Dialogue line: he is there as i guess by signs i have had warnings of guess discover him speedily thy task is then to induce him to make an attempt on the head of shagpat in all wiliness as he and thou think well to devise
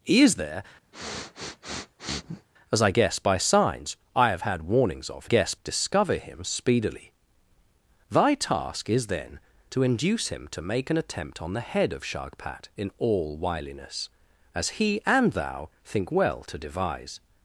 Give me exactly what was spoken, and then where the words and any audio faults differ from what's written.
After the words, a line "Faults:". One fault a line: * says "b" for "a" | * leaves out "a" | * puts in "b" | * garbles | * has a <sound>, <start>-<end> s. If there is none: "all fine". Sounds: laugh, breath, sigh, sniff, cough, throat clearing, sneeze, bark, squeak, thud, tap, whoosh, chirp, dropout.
he is there as i guess by signs i have had warnings of guess discover him speedily thy task is then to induce him to make an attempt on the head of shagpat in all wiliness as he and thou think well to devise
Faults:
* has a sniff, 0.9-2.5 s